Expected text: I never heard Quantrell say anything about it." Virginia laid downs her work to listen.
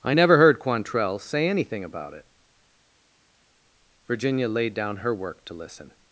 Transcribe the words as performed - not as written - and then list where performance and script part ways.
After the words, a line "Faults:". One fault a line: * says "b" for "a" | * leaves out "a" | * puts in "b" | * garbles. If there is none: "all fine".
I never heard Quantrell say anything about it." Virginia laid down her work to listen.
Faults:
* says "down" for "downs"